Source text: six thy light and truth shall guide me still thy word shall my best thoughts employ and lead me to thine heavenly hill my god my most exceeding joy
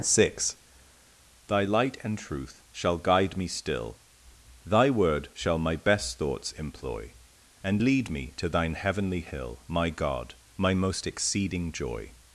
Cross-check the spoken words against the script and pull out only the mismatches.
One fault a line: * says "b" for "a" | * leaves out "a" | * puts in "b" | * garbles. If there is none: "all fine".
all fine